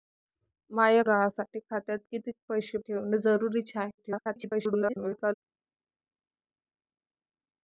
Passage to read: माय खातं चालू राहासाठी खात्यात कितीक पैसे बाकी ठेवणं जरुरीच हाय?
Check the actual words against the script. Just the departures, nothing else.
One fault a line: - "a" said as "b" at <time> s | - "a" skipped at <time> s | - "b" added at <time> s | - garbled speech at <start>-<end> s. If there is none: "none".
- "खातं चालू" skipped at 1.0 s
- "बाकी" skipped at 2.8 s
- garbled speech at 4.0-5.3 s